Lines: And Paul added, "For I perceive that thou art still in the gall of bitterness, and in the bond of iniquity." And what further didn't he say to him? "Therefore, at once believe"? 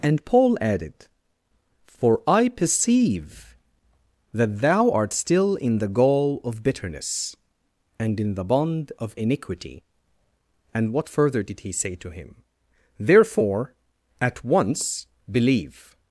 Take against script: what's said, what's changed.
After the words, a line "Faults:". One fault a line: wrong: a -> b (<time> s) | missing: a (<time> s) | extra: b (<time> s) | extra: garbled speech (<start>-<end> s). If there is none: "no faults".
And Paul added, "For I perceive that thou art still in the gall of bitterness, and in the bond of iniquity." And what further did he say to him? "Therefore, at once believe"?
Faults:
wrong: didn't -> did (11.4 s)